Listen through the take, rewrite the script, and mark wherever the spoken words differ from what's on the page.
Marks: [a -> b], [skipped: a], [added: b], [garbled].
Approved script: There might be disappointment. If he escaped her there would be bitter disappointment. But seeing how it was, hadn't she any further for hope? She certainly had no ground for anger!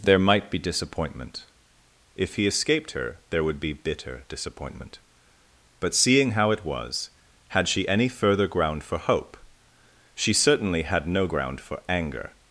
There might be disappointment. If he escaped her there would be bitter disappointment. But seeing how it was, [hadn't -> had] she any further [added: ground] for hope? She certainly had no ground for anger!